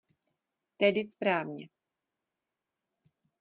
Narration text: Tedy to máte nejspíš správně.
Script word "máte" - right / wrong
wrong